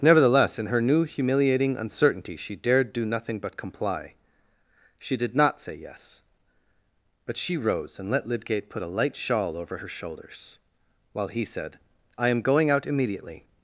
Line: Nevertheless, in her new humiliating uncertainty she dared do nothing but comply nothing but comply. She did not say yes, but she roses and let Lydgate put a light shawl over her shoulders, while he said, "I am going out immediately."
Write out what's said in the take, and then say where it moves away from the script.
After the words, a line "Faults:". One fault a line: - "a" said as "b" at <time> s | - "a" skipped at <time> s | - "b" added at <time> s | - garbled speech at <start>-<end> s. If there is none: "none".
Nevertheless, in her new humiliating uncertainty she dared do nothing but comply. She did not say yes, but she rose and let Lydgate put a light shawl over her shoulders, while he said, "I am going out immediately."
Faults:
- "nothing but comply" skipped at 4.2 s
- "roses" said as "rose" at 7.6 s